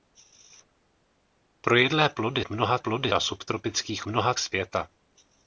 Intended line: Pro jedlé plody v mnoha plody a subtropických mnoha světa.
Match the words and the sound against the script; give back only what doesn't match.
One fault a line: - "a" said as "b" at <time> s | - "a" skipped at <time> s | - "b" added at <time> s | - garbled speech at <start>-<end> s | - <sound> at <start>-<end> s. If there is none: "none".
none